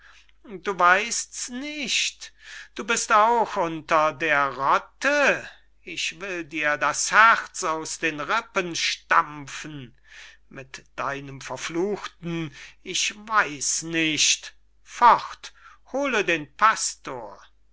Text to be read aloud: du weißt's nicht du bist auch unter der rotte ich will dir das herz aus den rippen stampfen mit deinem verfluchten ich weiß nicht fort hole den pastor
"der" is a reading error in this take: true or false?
false